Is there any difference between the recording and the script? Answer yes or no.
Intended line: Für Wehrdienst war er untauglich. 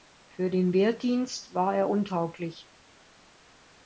yes